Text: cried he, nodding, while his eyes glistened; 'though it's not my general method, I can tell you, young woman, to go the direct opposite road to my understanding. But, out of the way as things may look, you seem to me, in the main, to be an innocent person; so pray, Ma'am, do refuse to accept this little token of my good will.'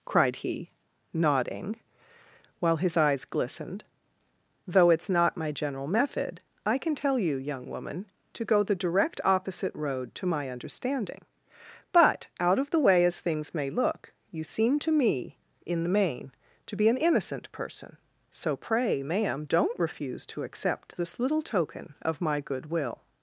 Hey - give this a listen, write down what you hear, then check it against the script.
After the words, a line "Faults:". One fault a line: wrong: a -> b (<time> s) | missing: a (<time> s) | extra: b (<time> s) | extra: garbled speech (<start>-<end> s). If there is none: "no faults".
cried he, nodding, while his eyes glistened; 'though it's not my general method, I can tell you, young woman, to go the direct opposite road to my understanding. But, out of the way as things may look, you seem to me, in the main, to be an innocent person; so pray, Ma'am, don't refuse to accept this little token of my good will.'
Faults:
wrong: do -> don't (19.4 s)